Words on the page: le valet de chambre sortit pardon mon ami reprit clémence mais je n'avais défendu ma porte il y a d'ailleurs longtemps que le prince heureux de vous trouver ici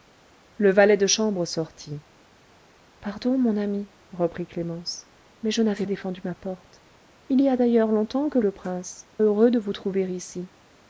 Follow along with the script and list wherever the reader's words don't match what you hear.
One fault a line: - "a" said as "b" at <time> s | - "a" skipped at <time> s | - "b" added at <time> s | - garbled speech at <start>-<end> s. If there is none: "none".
none